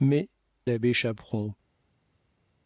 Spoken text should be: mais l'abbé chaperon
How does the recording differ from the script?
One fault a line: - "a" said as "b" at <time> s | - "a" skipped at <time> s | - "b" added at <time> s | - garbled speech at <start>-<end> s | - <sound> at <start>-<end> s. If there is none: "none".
none